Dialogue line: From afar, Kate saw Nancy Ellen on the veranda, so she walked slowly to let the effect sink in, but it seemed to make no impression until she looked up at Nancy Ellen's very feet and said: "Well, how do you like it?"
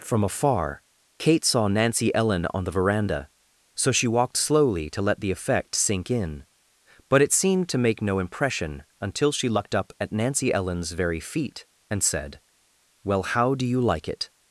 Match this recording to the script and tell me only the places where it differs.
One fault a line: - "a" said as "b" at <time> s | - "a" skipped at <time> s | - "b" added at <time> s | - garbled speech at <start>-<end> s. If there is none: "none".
none